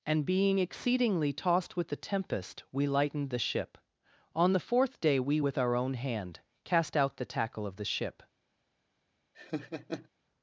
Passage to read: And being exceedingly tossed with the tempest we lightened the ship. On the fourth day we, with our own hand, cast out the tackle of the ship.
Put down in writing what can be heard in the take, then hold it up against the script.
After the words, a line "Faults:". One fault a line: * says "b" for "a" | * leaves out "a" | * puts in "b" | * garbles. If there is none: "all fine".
And being exceedingly tossed with the tempest we lightened the ship. On the fourth day we, with our own hand, cast out the tackle of the ship.
Faults:
all fine